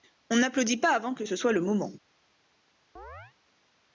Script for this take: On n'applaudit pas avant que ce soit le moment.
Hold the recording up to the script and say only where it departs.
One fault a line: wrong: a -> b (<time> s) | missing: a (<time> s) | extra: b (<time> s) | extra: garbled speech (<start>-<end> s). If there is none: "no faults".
no faults